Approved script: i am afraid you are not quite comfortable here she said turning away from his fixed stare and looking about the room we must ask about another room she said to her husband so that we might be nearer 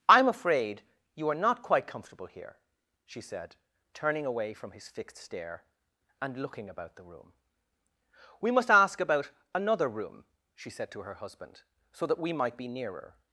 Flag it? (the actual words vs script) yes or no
no